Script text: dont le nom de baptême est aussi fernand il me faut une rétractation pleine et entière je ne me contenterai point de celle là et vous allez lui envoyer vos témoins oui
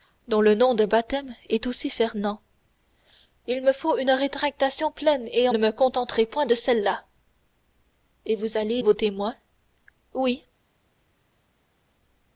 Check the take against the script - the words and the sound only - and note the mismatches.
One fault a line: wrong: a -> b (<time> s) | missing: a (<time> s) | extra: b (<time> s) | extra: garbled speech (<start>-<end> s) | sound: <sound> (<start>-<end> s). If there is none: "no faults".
missing: entière je (5.5 s)
missing: lui envoyer (8.8 s)